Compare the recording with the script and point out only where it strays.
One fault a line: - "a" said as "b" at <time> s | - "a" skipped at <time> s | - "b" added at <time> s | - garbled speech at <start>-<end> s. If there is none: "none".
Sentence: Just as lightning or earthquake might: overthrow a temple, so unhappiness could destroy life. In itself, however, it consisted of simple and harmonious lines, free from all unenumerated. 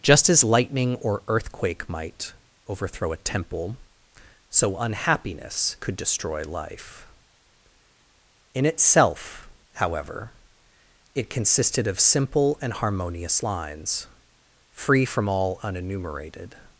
none